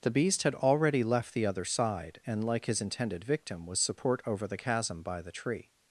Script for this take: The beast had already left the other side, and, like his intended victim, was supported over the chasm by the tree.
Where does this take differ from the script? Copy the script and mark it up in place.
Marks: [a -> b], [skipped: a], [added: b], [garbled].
The beast had already left the other side, and, like his intended victim, was [supported -> support] over the chasm by the tree.